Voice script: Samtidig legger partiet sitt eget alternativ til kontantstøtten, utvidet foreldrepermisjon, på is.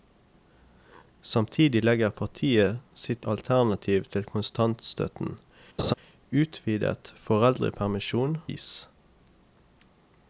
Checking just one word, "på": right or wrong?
wrong